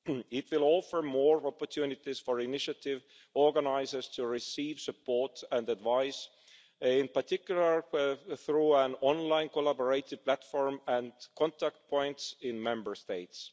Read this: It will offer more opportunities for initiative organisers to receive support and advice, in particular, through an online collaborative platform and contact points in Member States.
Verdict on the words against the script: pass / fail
pass